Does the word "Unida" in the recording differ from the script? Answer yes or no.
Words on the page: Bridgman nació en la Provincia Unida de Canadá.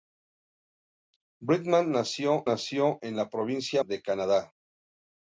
yes